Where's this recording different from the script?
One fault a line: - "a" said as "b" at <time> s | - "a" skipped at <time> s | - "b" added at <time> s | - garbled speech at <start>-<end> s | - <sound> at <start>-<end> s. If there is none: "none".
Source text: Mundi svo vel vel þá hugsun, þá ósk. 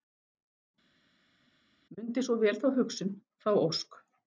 - "vel" skipped at 2.6 s